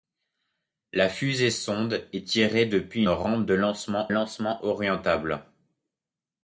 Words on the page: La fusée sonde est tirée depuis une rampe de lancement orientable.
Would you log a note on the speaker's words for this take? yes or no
yes